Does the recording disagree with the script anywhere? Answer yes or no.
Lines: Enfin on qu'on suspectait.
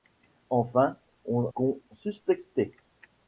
no